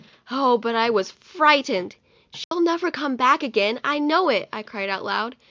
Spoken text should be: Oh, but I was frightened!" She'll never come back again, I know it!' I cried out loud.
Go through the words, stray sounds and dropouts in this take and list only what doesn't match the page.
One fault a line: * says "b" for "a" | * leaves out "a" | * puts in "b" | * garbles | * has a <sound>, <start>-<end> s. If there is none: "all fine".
* has a dropout, 2.4-2.5 s